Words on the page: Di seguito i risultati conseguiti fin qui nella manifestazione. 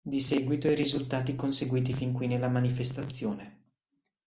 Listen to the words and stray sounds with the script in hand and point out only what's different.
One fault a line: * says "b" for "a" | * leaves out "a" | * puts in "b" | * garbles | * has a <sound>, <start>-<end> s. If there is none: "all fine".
all fine